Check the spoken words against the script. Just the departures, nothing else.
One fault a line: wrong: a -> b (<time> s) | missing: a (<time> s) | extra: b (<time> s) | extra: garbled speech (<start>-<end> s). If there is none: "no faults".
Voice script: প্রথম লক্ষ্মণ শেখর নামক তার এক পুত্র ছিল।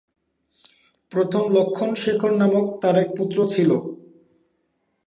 no faults